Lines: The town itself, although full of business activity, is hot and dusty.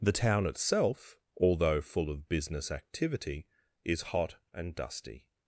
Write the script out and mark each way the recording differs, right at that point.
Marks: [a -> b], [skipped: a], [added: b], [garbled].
The town itself, although full of business activity, is hot and dusty.